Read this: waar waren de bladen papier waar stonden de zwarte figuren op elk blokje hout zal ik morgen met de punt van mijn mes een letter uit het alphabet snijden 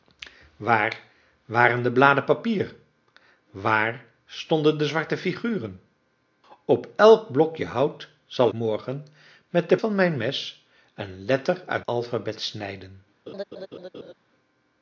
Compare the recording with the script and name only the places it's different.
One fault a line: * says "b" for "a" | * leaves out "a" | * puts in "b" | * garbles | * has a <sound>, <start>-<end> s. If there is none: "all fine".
* leaves out "ik"
* leaves out "punt"
* leaves out "het"
* has a laugh, 13.3-14.1 s